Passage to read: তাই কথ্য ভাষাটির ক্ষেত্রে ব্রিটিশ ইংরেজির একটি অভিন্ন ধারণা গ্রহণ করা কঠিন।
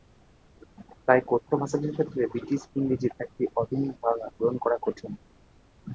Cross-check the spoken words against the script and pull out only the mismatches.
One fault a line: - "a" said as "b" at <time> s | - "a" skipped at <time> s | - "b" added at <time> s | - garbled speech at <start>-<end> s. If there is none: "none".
none